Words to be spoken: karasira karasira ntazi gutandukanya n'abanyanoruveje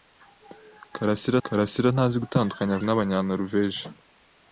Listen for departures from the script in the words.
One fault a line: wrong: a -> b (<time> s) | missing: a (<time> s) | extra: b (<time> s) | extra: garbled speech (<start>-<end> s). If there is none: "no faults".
no faults